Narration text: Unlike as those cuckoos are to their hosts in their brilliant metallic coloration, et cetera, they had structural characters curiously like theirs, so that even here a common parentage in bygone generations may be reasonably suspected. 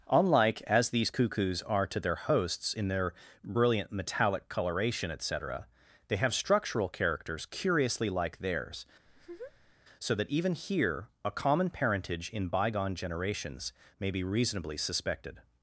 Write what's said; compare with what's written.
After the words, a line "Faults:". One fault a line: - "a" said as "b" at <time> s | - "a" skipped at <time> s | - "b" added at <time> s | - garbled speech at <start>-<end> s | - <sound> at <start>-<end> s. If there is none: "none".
Unlike as these cuckoos are to their hosts in their brilliant metallic coloration, et cetera, they have structural characters curiously like theirs, so that even here a common parentage in bygone generations may be reasonably suspected.
Faults:
- "those" said as "these" at 0.9 s
- "had" said as "have" at 6.2 s
- laugh at 9.1-9.8 s